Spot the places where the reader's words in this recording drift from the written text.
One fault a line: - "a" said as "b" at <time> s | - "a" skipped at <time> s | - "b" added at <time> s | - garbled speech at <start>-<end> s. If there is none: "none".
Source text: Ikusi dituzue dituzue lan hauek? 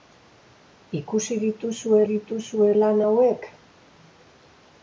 none